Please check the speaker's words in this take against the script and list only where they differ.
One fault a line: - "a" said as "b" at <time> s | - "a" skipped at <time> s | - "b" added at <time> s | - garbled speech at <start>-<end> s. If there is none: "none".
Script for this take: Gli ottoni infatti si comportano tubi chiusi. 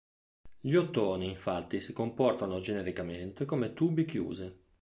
- "genericamente come" added at 2.6 s